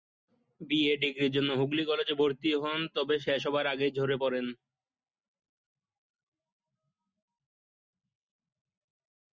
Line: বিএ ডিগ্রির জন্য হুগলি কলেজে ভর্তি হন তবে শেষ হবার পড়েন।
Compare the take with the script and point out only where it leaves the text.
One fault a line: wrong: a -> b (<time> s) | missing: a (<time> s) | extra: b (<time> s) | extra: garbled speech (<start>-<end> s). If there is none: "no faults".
extra: আগেই ঝরে (3.7 s)